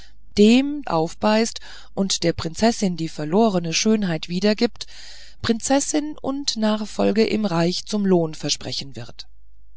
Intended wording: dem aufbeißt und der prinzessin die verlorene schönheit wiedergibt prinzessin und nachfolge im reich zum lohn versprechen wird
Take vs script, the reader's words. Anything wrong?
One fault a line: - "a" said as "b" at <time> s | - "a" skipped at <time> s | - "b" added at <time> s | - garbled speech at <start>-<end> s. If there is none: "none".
none